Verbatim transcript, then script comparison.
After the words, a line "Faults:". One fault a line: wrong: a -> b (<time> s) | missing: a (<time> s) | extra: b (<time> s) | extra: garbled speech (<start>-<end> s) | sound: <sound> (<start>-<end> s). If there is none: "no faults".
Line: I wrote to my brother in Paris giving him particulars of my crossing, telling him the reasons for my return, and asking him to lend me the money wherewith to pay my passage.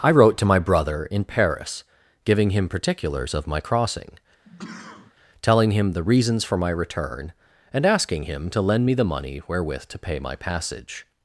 I wrote to my brother in Paris giving him particulars of my crossing, telling him the reasons for my return, and asking him to lend me the money wherewith to pay my passage.
Faults:
sound: sneeze (4.4-5.2 s)